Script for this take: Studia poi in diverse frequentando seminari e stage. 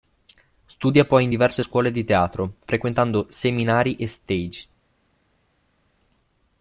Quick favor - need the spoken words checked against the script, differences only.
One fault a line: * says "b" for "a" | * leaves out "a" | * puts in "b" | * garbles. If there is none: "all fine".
* puts in "scuole di teatro"